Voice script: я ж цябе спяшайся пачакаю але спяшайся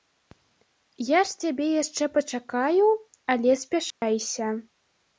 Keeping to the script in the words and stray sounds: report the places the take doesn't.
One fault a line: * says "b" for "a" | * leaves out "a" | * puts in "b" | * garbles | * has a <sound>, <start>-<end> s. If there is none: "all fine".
* says "яшчэ" for "спяшайся"
* has a dropout, 3.9-4.0 s